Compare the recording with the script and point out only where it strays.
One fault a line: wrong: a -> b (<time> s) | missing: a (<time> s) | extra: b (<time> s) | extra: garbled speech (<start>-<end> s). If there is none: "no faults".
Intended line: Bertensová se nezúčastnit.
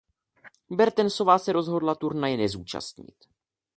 extra: rozhodla turnaje (1.5 s)